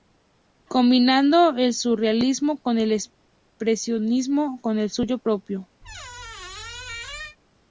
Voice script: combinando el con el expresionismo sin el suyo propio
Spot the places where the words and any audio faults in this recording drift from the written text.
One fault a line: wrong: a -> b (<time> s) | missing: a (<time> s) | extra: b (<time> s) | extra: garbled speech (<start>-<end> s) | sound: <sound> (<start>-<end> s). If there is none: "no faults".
extra: surrealismo (1.8 s)
wrong: sin -> con (4.6 s)
sound: squeak (5.8-7.4 s)